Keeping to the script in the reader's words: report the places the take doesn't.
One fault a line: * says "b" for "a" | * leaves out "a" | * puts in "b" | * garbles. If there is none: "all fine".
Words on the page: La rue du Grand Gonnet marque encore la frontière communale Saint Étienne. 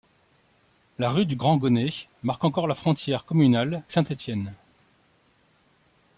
all fine